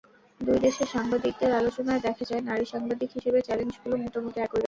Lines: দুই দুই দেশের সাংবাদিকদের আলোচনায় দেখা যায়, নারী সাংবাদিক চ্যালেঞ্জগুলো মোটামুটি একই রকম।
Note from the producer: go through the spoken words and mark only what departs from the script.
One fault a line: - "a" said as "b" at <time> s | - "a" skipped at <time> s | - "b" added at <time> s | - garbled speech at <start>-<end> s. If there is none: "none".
- "দুই" skipped at 0.6 s
- "হিসেবে" added at 3.2 s